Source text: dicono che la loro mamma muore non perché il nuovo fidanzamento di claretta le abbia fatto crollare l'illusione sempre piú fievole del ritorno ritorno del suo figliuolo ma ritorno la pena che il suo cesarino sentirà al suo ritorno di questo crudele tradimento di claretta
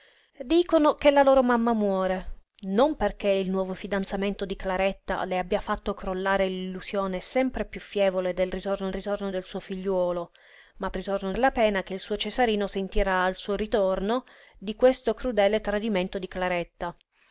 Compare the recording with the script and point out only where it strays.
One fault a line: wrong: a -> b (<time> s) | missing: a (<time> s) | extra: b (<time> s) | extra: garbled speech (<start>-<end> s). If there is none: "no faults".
no faults